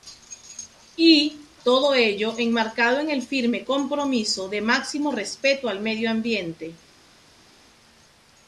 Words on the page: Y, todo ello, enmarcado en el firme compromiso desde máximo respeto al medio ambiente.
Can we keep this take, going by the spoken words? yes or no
no